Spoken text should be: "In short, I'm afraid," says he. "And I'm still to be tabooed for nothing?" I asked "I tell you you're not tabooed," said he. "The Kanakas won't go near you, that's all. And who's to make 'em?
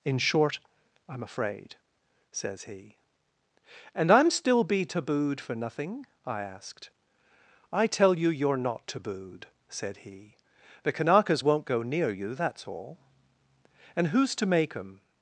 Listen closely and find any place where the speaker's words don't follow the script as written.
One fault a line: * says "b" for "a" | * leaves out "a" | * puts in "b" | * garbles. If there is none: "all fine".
* leaves out "to"